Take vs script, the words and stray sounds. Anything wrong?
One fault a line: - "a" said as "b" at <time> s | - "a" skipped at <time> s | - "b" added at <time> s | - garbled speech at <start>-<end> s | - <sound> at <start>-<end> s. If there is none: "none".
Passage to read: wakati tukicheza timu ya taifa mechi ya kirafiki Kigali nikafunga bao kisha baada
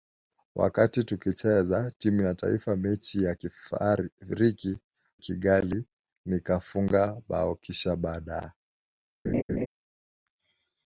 - laugh at 9.2-9.7 s